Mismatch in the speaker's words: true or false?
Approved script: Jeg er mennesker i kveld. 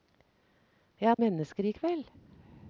false